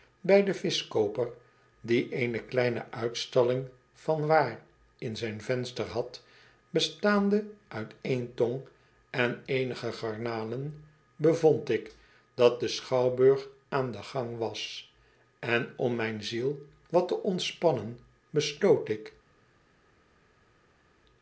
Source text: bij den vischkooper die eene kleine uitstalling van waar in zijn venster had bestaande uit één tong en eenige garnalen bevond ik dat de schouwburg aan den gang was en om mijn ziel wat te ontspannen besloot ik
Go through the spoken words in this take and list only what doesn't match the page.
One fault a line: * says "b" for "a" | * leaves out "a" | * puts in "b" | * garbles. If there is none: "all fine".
all fine